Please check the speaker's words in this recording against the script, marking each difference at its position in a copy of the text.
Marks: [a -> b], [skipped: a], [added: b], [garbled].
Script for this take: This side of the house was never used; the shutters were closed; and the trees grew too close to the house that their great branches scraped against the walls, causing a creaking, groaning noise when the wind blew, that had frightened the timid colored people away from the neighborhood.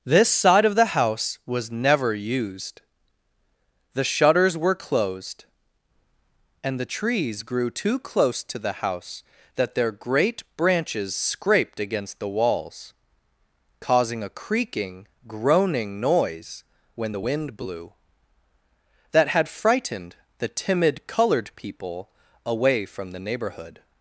This side of the house was never used; the shutters were closed; and the trees grew too close to the house that their great branches scraped against the walls, causing a creaking, groaning noise when the wind blew, that had frightened the timid colored people away from the neighborhood.